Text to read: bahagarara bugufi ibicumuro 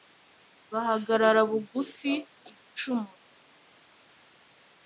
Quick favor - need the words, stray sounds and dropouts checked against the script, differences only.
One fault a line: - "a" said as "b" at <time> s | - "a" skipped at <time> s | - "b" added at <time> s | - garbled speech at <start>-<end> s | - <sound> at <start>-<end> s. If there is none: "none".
none